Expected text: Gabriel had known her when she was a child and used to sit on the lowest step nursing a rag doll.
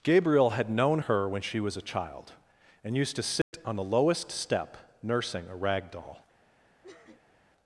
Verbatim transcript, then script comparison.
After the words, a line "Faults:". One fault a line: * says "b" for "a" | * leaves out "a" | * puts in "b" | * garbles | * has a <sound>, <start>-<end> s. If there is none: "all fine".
Gabriel had known her when she was a child and used to sit on the lowest step nursing a rag doll.
Faults:
* has a dropout, 3.4-3.5 s
* has a sniff, 6.8-7.4 s